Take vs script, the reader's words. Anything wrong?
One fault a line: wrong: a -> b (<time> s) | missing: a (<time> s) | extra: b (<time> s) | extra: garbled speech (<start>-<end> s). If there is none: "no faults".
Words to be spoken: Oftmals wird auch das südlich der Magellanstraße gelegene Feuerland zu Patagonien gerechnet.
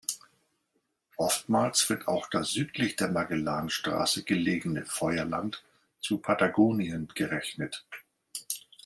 no faults